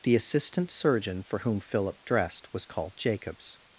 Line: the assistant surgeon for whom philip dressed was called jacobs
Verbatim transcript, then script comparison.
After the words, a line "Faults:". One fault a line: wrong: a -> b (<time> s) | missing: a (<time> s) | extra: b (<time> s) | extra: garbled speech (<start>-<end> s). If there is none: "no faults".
the assistant surgeon for whom philip dressed was called jacobs
Faults:
no faults